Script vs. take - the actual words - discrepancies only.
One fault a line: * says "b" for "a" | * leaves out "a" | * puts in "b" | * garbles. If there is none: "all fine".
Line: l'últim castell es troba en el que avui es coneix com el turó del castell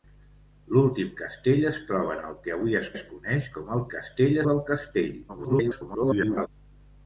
* puts in "es"
* says "castell" for "turó"
* garbles